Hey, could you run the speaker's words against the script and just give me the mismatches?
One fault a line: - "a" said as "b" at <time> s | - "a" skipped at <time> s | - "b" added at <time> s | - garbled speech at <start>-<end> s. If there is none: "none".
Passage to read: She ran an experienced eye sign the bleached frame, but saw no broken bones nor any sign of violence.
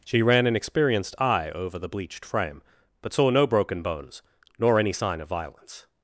- "sign" said as "over" at 1.5 s